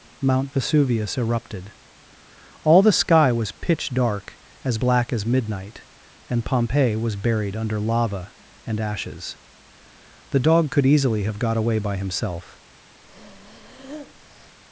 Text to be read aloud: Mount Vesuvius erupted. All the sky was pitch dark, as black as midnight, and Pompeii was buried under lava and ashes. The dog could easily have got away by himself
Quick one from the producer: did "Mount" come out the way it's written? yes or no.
yes